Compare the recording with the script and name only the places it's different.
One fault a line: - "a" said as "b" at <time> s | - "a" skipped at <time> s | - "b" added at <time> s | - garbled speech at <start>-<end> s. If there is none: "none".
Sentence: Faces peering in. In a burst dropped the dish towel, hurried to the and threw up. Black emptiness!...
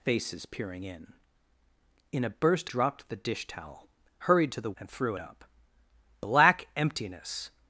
none